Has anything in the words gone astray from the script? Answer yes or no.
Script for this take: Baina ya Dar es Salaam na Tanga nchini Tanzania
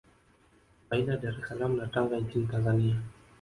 no